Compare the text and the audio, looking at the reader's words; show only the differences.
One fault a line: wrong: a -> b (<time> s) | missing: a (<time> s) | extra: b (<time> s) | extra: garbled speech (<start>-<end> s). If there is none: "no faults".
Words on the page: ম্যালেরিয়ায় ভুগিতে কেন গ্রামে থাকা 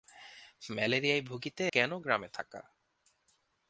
no faults